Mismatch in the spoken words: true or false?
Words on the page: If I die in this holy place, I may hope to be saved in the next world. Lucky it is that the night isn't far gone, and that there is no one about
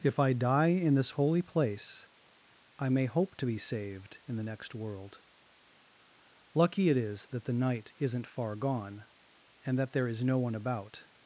false